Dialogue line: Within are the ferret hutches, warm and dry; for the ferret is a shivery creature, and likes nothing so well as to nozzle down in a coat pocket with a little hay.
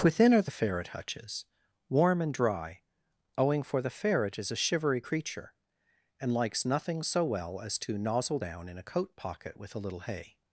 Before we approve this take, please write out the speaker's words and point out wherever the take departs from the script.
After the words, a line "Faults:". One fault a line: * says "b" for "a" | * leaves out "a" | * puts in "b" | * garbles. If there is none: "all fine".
Within are the ferret hutches, warm and dry; owing for the ferret is a shivery creature, and likes nothing so well as to nozzle down in a coat pocket with a little hay.
Faults:
* puts in "owing"